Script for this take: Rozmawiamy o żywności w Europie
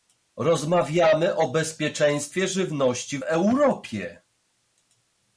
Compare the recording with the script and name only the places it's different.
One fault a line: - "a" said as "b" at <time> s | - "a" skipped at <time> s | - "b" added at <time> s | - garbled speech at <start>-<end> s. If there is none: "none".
- "bezpieczeństwie" added at 1.5 s